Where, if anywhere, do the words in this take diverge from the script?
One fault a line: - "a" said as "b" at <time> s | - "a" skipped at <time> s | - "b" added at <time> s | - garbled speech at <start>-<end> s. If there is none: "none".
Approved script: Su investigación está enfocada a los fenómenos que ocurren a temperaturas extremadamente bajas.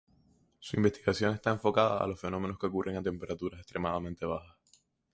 none